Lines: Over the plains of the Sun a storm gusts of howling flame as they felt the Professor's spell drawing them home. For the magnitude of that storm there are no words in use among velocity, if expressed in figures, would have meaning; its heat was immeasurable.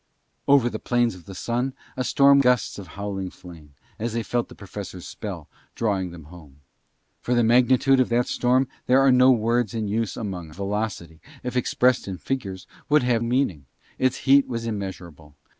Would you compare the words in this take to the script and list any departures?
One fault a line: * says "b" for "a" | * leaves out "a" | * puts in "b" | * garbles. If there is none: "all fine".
all fine